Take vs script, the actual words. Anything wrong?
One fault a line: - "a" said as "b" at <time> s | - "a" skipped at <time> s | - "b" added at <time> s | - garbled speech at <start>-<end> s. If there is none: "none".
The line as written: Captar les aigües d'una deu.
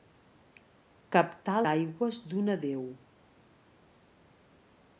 - "les" skipped at 1.6 s